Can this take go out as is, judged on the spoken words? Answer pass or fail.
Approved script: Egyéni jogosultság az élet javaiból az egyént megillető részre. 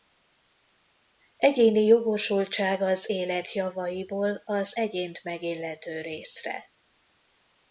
pass